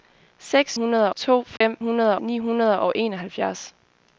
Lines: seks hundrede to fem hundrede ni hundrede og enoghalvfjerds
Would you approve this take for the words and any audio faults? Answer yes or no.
no